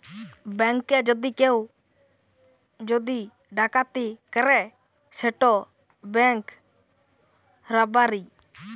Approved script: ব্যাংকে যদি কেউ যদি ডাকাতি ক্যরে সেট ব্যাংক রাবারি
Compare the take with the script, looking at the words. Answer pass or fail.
pass